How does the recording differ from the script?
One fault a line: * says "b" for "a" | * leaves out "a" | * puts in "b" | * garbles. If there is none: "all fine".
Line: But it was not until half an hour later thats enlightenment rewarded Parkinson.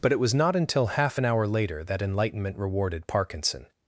* says "that" for "thats"